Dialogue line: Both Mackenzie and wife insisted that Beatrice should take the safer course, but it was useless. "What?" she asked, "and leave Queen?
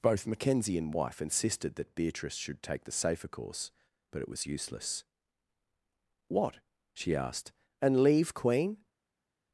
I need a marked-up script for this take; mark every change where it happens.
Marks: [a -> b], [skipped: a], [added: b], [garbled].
Both Mackenzie and wife insisted that Beatrice should take the safer course, but it was useless. "What?" she asked, "and leave Queen?